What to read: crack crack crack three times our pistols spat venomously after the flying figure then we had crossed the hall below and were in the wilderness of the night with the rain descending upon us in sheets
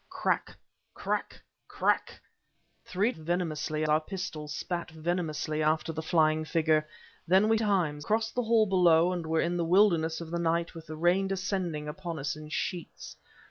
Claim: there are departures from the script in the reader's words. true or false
true